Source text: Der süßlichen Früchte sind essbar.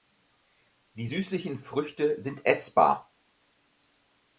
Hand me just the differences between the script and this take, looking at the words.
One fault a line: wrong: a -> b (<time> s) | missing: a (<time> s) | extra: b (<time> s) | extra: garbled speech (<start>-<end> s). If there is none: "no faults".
wrong: Der -> Die (0.9 s)